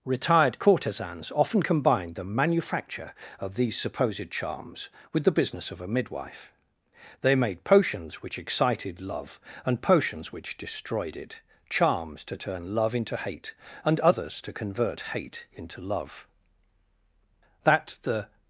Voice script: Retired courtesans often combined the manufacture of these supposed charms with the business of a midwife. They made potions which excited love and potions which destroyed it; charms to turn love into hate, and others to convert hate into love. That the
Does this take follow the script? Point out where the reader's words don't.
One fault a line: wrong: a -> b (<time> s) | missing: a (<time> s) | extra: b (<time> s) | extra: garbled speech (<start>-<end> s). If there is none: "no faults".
no faults